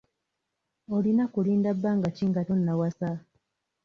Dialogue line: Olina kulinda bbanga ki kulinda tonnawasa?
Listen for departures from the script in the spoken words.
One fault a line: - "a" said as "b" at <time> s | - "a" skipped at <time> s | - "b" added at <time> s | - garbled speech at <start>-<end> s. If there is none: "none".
- "kulinda" said as "nga" at 2.3 s